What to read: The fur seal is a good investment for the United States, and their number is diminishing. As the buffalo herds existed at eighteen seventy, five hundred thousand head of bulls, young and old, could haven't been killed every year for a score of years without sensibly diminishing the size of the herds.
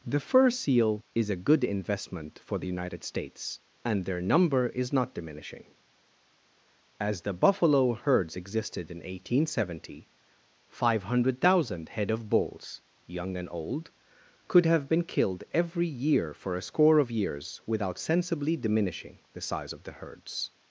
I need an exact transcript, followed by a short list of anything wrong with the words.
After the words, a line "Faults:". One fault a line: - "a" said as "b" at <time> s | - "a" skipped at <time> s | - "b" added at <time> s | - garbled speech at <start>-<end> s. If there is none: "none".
The fur seal is a good investment for the United States, and their number is not diminishing. As the buffalo herds existed in eighteen seventy, five hundred thousand head of bulls, young and old, could have been killed every year for a score of years without sensibly diminishing the size of the herds.
Faults:
- "not" added at 4.9 s
- "at" said as "in" at 8.9 s
- "haven't" said as "have" at 14.7 s